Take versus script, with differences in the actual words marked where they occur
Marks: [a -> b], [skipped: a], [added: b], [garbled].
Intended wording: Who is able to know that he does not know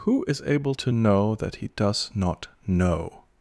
Who is able to know that he does not know